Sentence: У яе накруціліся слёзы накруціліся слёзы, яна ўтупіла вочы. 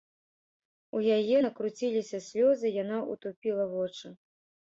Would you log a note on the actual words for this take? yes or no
yes